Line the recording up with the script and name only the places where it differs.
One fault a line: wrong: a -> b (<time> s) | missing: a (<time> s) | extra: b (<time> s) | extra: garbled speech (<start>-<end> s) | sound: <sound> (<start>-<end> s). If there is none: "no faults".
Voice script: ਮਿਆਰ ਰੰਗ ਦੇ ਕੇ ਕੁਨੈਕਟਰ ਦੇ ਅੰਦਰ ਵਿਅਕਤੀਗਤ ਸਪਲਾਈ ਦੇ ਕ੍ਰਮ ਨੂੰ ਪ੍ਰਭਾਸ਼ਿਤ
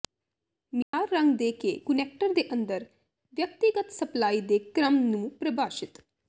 sound: dropout (0.8-0.9 s)